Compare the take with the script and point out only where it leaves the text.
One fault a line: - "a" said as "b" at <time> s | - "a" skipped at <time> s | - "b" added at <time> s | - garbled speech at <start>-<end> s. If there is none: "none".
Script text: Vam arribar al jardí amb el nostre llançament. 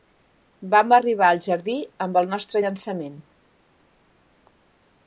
none